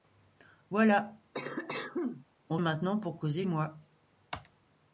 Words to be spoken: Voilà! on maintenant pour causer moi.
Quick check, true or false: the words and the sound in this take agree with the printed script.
false